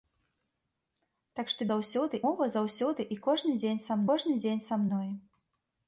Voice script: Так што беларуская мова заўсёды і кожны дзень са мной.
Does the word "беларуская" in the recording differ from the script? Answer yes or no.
yes